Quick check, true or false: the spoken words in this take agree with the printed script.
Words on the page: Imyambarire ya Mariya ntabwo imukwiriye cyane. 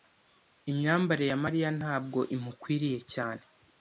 true